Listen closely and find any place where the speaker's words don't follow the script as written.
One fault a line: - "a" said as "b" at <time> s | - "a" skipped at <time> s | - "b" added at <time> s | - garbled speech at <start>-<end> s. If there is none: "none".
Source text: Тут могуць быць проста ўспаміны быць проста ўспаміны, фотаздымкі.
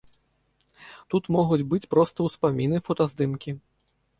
- "быць проста ўспаміны" skipped at 2.9 s